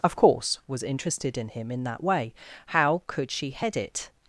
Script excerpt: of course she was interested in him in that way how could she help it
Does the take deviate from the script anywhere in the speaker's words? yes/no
yes